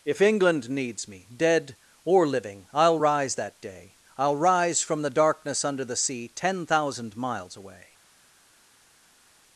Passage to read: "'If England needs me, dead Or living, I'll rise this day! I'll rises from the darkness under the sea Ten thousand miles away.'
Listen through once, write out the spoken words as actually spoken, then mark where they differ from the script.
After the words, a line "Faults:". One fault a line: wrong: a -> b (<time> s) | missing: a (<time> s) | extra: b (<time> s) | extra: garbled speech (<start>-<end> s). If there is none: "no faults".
"'If England needs me, dead Or living, I'll rise that day! I'll rise from the darkness under the sea Ten thousand miles away.'
Faults:
wrong: this -> that (3.3 s)
wrong: rises -> rise (4.4 s)